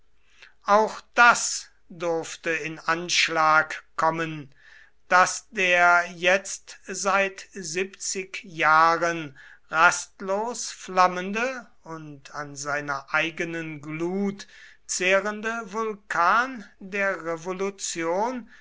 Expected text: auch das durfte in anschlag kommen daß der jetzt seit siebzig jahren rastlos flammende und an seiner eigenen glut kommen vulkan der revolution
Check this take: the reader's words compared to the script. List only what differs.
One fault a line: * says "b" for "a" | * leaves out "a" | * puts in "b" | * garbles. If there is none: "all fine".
* says "zehrende" for "kommen"